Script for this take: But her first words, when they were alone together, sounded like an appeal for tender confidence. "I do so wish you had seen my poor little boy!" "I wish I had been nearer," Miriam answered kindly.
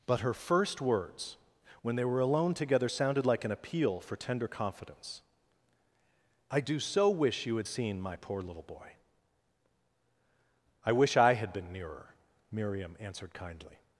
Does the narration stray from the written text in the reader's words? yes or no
no